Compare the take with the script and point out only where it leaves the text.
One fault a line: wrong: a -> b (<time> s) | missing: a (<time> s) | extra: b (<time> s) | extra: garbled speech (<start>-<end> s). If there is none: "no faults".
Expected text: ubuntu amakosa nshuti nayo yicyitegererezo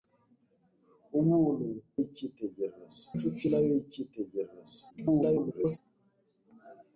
wrong: amakosa -> yicyitegererezo (2.0 s)
extra: garbled speech (4.9-5.8 s)